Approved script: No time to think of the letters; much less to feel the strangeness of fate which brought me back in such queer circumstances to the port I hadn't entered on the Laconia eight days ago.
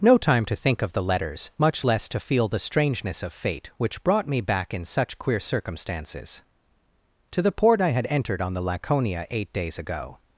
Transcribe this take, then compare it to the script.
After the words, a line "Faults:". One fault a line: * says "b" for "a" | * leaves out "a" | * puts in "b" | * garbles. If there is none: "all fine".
No time to think of the letters; much less to feel the strangeness of fate which brought me back in such queer circumstances to the port I had entered on the Laconia eight days ago.
Faults:
* says "had" for "hadn't"